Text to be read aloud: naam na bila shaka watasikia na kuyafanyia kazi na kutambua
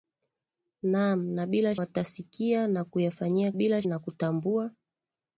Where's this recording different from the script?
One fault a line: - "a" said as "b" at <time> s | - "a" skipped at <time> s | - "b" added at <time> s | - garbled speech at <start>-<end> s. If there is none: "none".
- "shaka" skipped at 1.8 s
- "kazi" said as "bila" at 3.5 s